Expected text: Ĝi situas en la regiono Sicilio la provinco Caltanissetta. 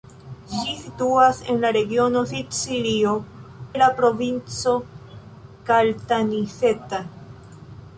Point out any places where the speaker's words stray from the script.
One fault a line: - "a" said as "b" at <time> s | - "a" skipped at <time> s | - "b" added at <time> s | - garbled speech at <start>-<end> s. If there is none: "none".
none